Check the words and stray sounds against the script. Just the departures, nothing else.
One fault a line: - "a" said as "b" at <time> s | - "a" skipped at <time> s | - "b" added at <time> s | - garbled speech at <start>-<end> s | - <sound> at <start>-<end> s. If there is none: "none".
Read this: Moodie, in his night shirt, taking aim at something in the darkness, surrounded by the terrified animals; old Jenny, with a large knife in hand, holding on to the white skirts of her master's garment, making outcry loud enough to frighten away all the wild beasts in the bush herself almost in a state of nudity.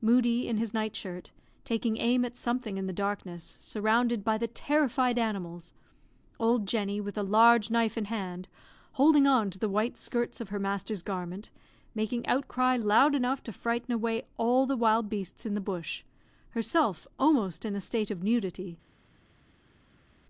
none